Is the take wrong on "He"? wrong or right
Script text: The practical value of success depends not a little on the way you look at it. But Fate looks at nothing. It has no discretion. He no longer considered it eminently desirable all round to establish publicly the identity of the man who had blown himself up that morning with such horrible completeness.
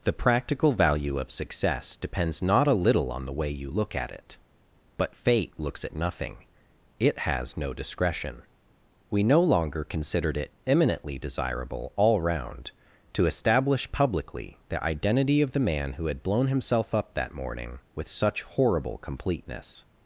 wrong